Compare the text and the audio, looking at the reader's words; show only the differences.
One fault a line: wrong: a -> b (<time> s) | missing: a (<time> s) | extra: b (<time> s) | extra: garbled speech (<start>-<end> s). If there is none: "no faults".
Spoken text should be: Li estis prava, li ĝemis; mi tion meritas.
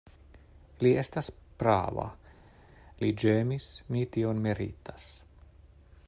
wrong: estis -> estas (1.0 s)